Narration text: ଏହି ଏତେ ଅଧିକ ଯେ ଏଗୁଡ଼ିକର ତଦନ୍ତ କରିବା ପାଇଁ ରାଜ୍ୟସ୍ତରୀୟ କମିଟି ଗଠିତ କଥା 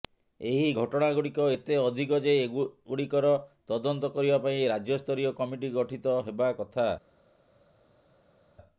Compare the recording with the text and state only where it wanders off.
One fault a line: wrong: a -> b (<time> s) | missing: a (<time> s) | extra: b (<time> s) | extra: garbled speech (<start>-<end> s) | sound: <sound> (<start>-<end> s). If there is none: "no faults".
extra: ଘଟଣାଗୁଡ଼ିକ (0.8 s)
extra: ହେବା (6.2 s)